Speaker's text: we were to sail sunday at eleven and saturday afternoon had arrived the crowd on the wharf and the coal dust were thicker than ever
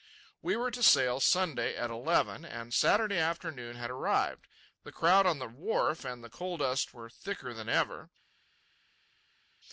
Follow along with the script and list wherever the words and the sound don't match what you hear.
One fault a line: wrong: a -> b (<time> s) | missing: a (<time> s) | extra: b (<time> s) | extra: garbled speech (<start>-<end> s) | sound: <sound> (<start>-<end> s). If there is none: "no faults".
no faults